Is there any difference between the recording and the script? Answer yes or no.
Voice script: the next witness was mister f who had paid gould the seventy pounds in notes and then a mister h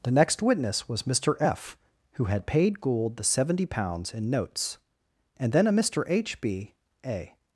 yes